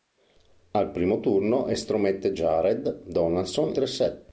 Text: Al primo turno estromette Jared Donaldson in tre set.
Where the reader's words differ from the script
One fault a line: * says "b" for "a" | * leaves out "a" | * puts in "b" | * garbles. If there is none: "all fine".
* leaves out "in"